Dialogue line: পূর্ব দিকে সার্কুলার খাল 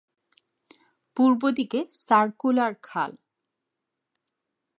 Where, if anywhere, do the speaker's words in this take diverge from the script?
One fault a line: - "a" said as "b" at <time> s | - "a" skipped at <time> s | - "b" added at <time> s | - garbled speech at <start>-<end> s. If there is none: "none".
none